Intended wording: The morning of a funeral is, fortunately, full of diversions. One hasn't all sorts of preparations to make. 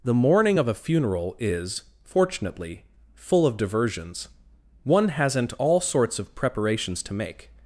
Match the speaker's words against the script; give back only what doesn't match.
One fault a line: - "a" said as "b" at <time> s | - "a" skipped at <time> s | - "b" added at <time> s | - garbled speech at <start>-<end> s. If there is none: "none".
none